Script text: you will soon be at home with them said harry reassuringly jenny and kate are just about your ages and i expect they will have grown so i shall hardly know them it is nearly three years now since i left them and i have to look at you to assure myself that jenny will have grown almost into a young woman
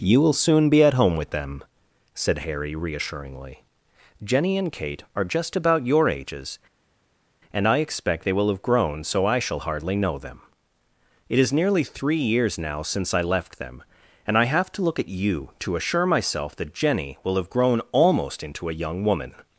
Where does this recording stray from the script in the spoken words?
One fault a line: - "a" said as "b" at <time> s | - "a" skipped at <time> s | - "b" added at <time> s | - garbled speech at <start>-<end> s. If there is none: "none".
none